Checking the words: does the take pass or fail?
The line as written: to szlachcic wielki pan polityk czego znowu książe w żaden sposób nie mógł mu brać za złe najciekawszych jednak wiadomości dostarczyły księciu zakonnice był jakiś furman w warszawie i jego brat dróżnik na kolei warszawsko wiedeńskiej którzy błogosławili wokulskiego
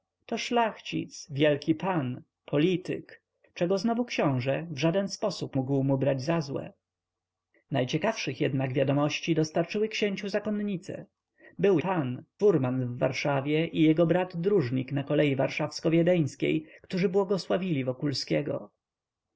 fail